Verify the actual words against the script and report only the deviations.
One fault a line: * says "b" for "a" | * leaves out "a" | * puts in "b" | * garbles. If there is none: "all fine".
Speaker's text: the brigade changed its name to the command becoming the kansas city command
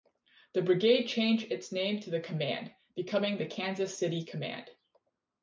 all fine